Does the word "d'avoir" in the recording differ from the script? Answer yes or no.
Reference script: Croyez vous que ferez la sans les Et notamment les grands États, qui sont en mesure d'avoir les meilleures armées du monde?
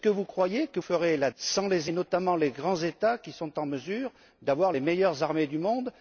no